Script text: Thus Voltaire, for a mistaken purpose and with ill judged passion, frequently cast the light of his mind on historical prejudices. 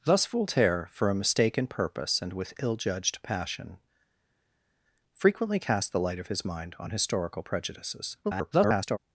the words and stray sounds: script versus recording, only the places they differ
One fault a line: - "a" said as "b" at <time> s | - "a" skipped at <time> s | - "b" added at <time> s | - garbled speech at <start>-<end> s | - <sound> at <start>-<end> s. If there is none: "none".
- garbled speech at 8.2-9.0 s